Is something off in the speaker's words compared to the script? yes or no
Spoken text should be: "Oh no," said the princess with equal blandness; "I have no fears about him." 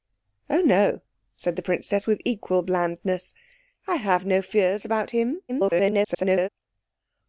yes